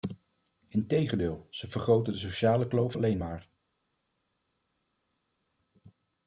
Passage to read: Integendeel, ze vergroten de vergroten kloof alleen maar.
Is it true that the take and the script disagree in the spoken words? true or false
true